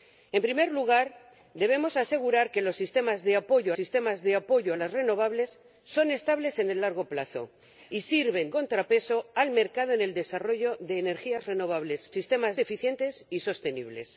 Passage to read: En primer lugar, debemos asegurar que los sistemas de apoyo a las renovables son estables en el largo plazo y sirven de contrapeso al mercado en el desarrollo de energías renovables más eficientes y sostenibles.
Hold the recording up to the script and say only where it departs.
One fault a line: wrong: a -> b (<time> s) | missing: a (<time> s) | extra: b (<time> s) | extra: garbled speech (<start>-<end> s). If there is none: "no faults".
extra: sistemas de apoyo (3.7 s)
missing: de (8.5 s)
wrong: más -> sistemas (12.1 s)